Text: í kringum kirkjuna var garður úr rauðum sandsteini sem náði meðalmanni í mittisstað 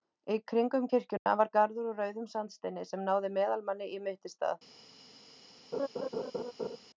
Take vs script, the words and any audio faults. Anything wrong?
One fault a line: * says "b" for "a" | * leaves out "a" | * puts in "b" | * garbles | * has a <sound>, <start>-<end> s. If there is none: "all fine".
* has a dropout, 1.2-1.3 s
* has a laugh, 5.7-6.8 s